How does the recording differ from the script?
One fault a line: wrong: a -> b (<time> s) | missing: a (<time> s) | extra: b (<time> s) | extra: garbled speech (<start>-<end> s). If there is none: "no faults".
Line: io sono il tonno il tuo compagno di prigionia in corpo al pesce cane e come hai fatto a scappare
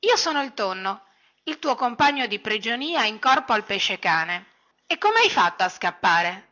no faults